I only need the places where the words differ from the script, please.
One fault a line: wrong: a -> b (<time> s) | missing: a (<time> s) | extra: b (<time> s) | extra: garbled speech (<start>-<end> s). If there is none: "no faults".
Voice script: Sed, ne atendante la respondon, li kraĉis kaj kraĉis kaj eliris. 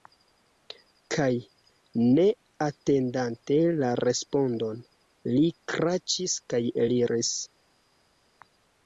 wrong: Sed -> Kaj (1.1 s)
missing: kraĉis kaj (6.7 s)